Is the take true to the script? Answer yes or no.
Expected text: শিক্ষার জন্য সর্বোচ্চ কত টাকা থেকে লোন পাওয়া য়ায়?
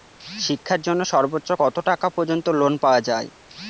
no